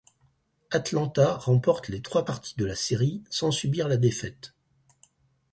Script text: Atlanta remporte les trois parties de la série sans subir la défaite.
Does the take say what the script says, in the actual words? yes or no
yes